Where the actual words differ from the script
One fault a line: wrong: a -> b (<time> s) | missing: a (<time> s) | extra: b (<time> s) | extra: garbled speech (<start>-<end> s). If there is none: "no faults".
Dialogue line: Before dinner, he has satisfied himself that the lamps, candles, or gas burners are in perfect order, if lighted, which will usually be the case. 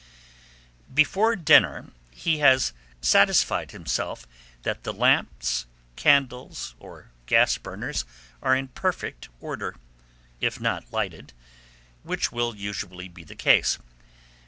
extra: not (10.6 s)